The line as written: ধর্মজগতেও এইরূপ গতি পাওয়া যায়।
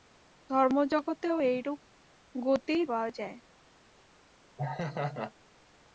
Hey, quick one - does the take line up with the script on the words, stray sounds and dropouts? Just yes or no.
no